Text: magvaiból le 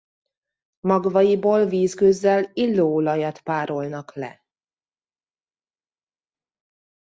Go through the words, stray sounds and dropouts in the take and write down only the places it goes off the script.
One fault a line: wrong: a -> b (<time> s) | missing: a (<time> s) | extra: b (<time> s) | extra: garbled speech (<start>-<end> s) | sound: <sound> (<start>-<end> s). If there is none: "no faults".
extra: vízgőzzel illóolajat párolnak (1.6 s)